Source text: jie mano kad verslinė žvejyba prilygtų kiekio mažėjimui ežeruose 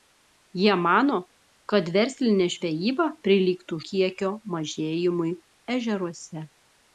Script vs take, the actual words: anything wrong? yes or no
no